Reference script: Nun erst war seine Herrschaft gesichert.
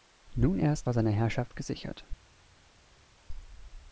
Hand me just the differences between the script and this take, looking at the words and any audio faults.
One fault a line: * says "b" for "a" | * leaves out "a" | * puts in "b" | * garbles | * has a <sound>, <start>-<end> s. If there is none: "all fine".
all fine